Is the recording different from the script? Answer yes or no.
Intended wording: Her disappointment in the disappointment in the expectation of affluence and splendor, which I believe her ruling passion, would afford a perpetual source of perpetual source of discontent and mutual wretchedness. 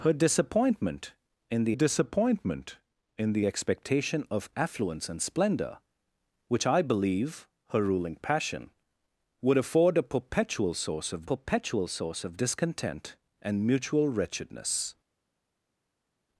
no